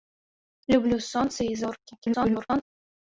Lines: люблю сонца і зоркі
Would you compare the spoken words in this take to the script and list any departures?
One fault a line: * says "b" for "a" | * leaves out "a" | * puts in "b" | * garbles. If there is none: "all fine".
* garbles